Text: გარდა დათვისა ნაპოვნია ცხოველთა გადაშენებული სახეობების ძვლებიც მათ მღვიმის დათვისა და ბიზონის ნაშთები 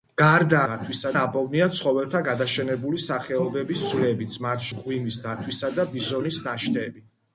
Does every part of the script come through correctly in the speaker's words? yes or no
yes